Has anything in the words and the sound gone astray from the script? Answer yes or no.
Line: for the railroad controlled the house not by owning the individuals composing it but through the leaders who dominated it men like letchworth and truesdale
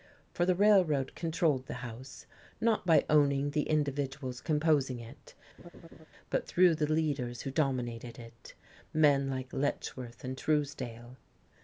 yes